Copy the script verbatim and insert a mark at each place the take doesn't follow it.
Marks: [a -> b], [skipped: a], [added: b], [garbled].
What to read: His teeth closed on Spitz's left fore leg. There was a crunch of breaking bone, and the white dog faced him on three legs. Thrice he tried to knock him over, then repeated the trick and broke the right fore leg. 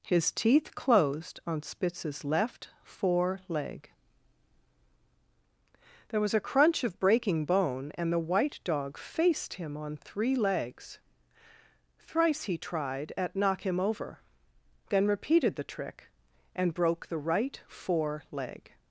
His teeth closed on Spitz's left fore leg. There was a crunch of breaking bone, and the white dog faced him on three legs. Thrice he tried [to -> at] knock him over, then repeated the trick and broke the right fore leg.